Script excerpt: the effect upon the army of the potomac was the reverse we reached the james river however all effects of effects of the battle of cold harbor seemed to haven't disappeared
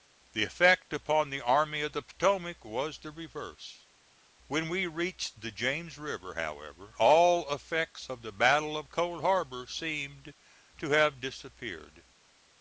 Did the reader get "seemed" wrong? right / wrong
right